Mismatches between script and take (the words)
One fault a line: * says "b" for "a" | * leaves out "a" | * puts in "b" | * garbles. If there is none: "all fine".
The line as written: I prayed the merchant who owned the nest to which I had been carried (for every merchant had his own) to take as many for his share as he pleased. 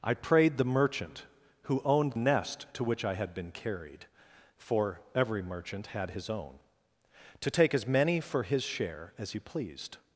* leaves out "the"